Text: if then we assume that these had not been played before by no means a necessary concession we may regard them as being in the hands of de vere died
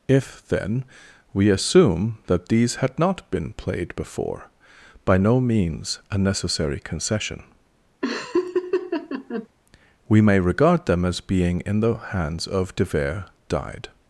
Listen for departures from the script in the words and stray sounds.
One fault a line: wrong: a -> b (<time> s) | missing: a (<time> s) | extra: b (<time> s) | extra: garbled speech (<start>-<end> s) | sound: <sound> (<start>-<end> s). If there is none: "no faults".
sound: laugh (8.0-9.5 s)